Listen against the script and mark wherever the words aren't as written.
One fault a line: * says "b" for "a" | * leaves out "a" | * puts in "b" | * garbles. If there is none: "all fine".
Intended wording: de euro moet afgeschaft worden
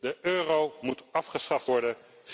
all fine